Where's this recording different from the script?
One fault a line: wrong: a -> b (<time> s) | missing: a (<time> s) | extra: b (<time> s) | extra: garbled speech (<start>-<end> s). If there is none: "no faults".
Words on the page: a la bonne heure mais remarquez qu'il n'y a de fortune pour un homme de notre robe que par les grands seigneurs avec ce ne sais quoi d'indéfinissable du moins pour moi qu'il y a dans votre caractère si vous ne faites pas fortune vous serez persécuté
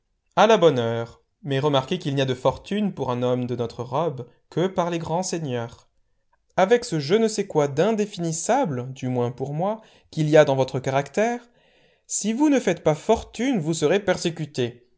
extra: je (7.0 s)